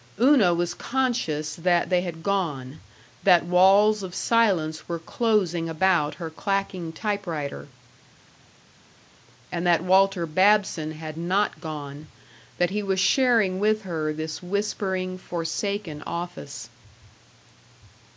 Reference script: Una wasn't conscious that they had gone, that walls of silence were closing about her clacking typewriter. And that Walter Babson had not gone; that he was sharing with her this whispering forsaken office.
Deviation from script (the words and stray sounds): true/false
true